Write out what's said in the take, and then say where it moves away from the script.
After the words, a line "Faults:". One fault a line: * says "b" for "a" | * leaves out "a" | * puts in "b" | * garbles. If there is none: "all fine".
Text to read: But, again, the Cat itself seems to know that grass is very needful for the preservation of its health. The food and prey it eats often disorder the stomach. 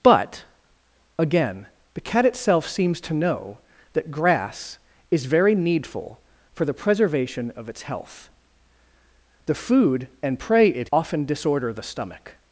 But, again, the Cat itself seems to know that grass is very needful for the preservation of its health. The food and prey it often disorder the stomach.
Faults:
* leaves out "eats"